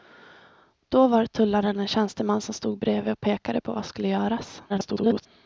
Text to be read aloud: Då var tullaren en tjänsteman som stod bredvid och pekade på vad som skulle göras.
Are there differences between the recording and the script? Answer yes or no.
yes